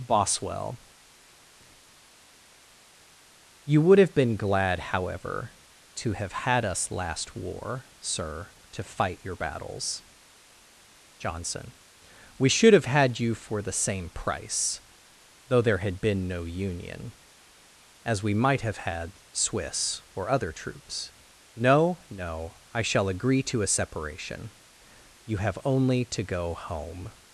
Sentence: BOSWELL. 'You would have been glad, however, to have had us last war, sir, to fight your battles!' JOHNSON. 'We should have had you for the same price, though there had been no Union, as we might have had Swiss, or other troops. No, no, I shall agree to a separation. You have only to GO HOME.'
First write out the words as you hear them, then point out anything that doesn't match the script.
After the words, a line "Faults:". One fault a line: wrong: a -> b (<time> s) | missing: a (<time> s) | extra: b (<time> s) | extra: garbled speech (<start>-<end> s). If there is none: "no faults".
BOSWELL. 'You would have been glad, however, to have had us last war, sir, to fight your battles!' JOHNSON. 'We should have had you for the same price, though there had been no Union, as we might have had Swiss, or other troops. No, no, I shall agree to a separation. You have only to GO HOME.'
Faults:
no faults